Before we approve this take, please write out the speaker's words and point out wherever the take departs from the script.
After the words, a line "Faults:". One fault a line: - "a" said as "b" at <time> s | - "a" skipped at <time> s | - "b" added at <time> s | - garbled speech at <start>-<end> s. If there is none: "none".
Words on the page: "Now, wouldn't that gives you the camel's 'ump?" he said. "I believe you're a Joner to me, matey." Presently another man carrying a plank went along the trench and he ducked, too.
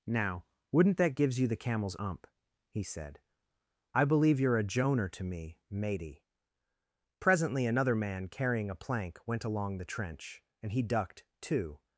"Now, wouldn't that gives you the camel's 'ump?" he said. "I believe you're a Joner to me, matey." Presently another man carrying a plank went along the trench and he ducked, too.
Faults:
none